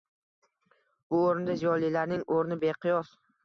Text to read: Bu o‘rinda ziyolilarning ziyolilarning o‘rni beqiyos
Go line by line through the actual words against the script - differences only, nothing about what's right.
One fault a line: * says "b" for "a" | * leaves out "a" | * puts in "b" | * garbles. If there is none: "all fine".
* leaves out "ziyolilarning"